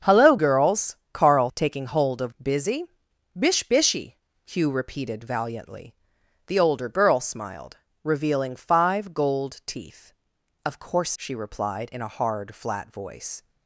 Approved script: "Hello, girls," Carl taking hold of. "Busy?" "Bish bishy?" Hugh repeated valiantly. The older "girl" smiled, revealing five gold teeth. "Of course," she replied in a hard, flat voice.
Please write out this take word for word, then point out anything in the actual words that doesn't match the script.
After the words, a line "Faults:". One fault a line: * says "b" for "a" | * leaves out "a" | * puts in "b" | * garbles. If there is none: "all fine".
"Hello, girls," Carl taking hold of. "Busy?" "Bish bishy?" Hugh repeated valiantly. The older "girl" smiled, revealing five gold teeth. "Of course," she replied in a hard, flat voice.
Faults:
all fine